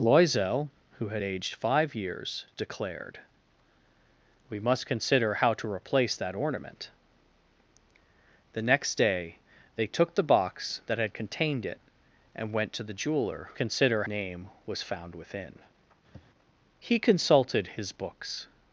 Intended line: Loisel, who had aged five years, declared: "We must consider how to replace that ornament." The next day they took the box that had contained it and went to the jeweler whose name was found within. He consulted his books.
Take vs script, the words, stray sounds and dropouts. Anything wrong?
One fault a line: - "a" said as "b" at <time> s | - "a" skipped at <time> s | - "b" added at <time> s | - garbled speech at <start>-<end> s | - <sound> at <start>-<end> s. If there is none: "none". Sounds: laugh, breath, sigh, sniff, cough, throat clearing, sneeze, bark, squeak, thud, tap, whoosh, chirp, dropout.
- "whose" said as "consider" at 13.6 s
- sniff at 16.1-16.3 s